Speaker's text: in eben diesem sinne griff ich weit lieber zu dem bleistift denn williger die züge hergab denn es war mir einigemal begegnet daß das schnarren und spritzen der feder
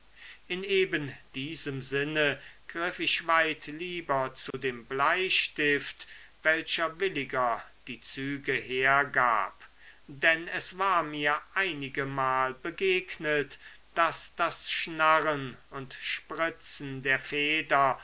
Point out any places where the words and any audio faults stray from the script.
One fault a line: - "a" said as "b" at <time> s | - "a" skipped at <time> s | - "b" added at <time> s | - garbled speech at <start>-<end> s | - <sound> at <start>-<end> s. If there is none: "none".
- dropout at 4.5-4.5 s
- "denn" said as "welcher" at 6.4 s